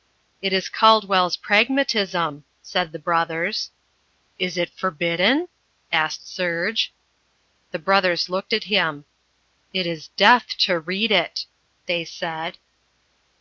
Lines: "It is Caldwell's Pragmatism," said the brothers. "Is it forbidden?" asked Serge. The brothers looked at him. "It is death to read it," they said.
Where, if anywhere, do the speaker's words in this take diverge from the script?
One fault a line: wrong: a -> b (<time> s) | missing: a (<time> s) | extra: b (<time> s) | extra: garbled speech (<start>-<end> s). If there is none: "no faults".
no faults